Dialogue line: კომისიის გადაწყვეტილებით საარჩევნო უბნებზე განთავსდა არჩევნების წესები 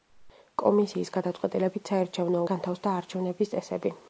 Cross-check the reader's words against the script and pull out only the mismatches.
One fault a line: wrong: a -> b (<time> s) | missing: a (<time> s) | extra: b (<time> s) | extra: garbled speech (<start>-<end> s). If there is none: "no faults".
missing: უბნებზე (2.4 s)